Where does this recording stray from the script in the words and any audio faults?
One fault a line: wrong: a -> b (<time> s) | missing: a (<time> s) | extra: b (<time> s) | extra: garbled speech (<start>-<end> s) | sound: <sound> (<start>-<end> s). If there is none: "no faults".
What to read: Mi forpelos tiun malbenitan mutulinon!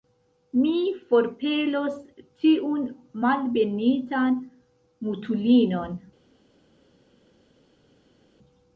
no faults